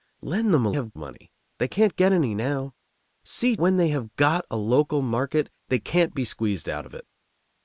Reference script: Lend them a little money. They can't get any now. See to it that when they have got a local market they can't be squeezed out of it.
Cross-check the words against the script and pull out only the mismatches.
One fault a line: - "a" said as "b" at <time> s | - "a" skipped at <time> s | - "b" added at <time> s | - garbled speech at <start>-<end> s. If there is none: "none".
- "little" said as "have" at 0.7 s
- "to it that" skipped at 3.6 s